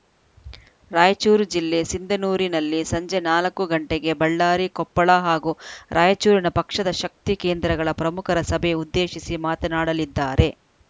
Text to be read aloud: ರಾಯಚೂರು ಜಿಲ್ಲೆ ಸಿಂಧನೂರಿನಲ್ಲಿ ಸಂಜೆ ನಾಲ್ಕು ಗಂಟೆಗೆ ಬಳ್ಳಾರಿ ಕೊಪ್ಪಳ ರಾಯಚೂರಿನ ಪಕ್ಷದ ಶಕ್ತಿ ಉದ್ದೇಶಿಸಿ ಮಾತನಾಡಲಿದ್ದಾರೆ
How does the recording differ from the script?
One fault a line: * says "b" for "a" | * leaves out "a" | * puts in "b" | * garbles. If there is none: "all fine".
* puts in "ಹಾಗೂ"
* puts in "ಕೇಂದ್ರಗಳ ಪ್ರಮುಖರ ಸಭೆ"